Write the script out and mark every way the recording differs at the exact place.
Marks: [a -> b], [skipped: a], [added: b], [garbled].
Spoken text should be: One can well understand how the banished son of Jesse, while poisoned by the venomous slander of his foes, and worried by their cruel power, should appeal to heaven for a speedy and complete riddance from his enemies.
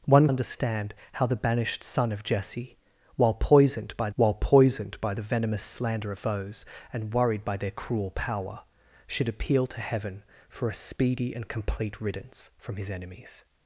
One [skipped: can well] understand how the banished son of Jesse, while poisoned by [added: while poisoned by] the venomous slander of [skipped: his] foes, and worried by their cruel power, should appeal to heaven for a speedy and complete riddance from his enemies.